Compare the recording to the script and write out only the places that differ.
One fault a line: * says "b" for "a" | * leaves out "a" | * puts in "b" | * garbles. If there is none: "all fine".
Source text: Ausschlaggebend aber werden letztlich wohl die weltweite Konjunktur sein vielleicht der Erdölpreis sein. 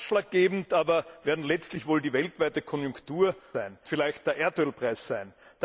all fine